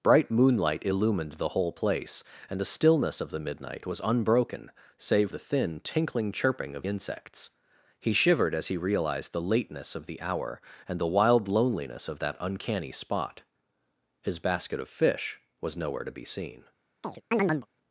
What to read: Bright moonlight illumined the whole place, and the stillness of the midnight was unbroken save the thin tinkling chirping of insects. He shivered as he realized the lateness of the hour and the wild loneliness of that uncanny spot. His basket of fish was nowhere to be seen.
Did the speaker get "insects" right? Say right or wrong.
right